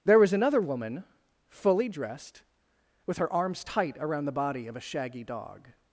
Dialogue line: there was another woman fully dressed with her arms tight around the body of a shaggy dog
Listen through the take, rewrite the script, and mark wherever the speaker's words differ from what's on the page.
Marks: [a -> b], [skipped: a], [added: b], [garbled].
there was another woman fully dressed with her arms tight around the body of a shaggy dog